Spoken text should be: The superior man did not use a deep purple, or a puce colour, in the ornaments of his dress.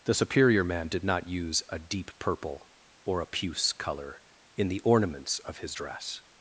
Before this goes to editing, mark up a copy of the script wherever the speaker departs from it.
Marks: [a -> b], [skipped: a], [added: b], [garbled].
The superior man did not use a deep purple, or a puce colour, in the ornaments of his dress.